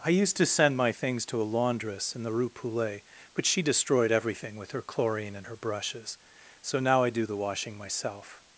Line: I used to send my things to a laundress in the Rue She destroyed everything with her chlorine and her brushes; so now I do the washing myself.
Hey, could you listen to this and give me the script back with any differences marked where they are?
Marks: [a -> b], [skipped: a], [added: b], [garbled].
I used to send my things to a laundress in the Rue [added: Poulet but] She destroyed everything with her chlorine and her brushes; so now I do the washing myself.